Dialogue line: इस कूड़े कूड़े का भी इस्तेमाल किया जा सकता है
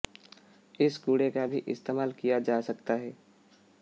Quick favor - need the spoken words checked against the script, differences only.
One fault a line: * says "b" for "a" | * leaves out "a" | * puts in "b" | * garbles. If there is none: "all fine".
* leaves out "कूड़े"